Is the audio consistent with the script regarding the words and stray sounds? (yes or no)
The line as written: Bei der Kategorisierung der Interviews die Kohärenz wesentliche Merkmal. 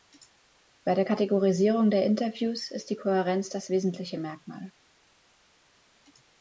no